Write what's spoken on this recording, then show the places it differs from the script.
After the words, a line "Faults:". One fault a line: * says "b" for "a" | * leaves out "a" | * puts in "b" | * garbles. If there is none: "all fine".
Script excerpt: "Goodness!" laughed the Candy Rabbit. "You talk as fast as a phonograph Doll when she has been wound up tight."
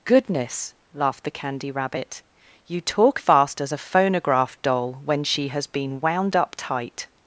"Goodness!" laughed the Candy Rabbit. "You talk fast as a phonograph Doll when she has been wound up tight."
Faults:
* leaves out "as"